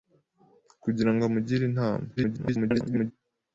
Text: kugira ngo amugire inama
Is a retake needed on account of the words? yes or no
yes